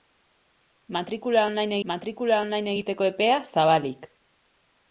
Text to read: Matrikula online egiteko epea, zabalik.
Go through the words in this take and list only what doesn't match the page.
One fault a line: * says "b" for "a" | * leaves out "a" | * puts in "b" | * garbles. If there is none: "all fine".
* puts in "matrikula online"